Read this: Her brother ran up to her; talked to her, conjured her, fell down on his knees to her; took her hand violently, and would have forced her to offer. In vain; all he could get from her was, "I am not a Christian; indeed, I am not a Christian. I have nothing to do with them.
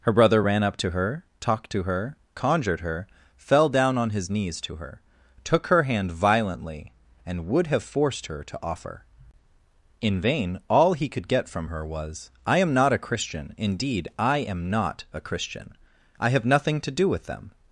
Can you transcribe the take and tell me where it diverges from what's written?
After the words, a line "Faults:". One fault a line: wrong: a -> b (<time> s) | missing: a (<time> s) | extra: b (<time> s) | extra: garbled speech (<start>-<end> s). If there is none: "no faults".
Her brother ran up to her; talked to her, conjured her, fell down on his knees to her; took her hand violently, and would have forced her to offer. In vain; all he could get from her was, "I am not a Christian; indeed, I am not a Christian. I have nothing to do with them.
Faults:
no faults